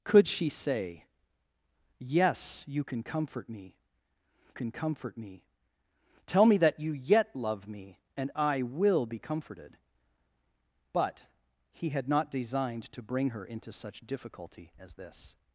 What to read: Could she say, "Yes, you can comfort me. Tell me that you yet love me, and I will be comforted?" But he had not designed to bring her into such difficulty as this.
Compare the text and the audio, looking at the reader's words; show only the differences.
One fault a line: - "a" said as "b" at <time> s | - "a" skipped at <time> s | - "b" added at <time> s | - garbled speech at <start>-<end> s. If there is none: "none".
- "can comfort me" added at 4.5 s